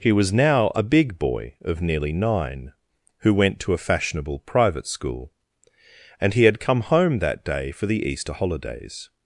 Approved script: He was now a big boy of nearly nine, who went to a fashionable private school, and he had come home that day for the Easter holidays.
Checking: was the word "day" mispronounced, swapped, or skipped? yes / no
no